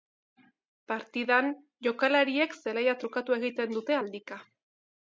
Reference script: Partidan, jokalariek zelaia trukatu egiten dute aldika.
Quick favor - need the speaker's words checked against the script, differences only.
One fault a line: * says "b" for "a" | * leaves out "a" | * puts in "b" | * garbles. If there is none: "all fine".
all fine